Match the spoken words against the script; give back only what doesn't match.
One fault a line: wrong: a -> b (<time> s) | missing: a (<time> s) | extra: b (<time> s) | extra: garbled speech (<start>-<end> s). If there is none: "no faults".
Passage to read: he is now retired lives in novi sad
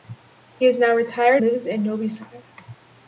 no faults